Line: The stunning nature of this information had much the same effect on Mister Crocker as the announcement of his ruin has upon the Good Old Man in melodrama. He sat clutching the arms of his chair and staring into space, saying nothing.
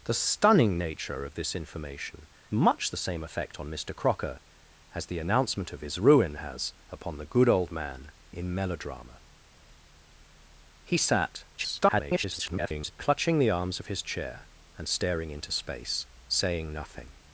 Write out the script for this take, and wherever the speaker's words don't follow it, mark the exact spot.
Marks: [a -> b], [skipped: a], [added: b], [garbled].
The stunning nature of this information [skipped: had] much the same effect on Mister Crocker as the announcement of his ruin has upon the Good Old Man in melodrama. He sat [garbled] clutching the arms of his chair and staring into space, saying nothing.